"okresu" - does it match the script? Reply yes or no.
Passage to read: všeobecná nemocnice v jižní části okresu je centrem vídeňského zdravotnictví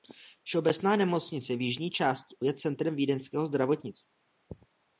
no